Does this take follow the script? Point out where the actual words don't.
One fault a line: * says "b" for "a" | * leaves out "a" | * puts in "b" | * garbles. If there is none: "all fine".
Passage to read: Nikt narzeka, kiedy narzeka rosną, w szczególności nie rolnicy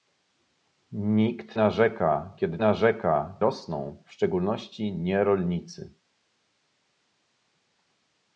all fine